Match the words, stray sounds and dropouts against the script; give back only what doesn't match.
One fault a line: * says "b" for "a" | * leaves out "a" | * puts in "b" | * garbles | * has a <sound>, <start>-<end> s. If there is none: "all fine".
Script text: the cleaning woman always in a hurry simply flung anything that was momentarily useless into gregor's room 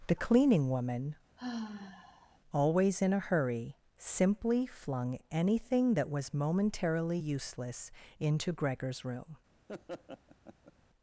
* has a sigh, 1.4-2.4 s
* has a laugh, 9.7-10.7 s